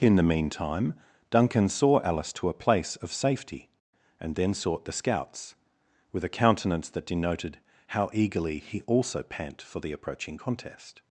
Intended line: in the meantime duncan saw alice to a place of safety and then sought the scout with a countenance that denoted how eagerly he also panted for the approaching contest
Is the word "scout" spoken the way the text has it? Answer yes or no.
no